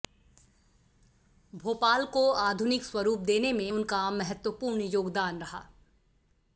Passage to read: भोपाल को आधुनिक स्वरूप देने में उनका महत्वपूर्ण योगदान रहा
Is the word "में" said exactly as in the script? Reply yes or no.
yes